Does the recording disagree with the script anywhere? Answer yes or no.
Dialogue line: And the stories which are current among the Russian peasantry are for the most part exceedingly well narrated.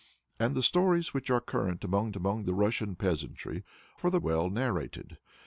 yes